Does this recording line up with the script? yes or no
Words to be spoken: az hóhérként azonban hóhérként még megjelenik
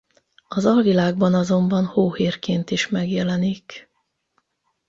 no